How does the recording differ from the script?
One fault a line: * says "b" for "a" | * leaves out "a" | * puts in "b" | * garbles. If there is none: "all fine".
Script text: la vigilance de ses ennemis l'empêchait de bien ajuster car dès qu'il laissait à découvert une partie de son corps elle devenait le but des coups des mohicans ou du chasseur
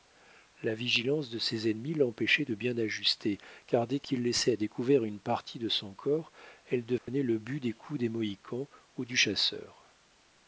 all fine